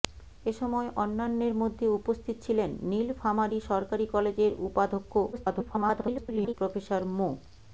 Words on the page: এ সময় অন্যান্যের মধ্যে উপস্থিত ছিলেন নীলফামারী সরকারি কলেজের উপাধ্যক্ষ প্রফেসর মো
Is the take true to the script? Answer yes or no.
no